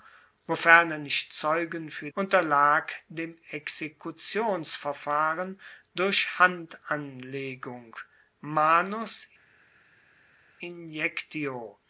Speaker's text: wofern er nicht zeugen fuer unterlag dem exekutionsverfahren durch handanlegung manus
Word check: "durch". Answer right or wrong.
right